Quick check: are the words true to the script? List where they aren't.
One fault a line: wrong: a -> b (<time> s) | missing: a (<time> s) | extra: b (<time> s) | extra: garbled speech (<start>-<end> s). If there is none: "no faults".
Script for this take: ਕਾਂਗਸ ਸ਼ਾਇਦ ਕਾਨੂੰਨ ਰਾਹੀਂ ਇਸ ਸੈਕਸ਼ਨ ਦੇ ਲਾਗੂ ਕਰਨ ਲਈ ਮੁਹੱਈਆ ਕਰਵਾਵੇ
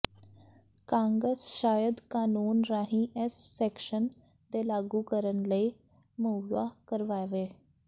no faults